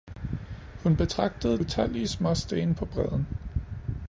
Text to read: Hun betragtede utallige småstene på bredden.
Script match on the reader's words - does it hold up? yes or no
yes